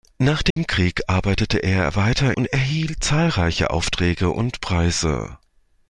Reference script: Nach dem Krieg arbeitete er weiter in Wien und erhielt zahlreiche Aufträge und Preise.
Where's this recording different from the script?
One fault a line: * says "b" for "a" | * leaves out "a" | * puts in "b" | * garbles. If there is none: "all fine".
* leaves out "in Wien"